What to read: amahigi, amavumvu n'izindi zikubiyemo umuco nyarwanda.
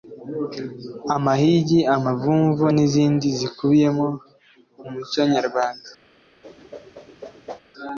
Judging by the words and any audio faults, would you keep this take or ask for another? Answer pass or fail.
fail